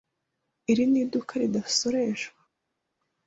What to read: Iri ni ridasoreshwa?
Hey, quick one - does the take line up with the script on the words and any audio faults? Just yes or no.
no